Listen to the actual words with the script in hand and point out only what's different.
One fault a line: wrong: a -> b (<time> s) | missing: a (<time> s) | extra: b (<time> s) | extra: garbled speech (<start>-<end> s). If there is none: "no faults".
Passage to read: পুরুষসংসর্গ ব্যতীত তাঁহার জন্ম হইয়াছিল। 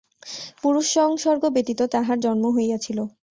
no faults